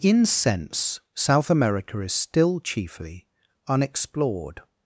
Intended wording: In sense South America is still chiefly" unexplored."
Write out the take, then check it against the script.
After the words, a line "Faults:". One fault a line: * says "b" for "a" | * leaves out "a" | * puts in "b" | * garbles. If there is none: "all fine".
In sense South America is still chiefly" unexplored."
Faults:
all fine